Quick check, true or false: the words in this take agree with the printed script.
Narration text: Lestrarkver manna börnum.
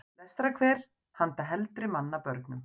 false